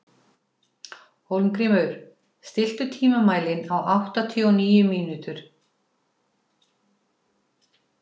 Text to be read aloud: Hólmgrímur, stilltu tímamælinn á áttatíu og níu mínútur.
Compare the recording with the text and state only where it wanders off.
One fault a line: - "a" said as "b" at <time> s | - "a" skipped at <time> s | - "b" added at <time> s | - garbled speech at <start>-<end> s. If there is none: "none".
none